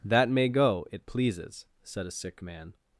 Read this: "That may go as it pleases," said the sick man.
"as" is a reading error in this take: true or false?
true